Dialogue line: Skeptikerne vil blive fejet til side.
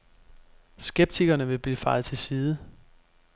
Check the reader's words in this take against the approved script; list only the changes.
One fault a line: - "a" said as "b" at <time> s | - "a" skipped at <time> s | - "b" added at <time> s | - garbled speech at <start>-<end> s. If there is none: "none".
none